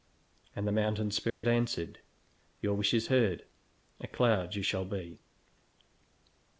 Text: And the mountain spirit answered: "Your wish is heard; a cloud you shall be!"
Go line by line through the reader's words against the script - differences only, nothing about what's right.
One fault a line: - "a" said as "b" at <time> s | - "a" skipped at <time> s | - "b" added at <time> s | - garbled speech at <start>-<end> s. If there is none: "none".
none